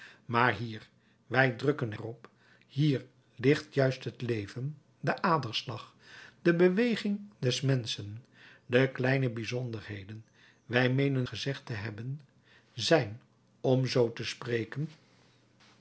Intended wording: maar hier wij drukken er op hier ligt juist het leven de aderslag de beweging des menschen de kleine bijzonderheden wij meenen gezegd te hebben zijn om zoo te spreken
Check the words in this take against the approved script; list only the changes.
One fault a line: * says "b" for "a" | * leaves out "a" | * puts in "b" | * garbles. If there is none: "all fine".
all fine